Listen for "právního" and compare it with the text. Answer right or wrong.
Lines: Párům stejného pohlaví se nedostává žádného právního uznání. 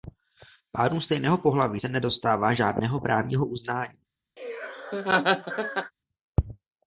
right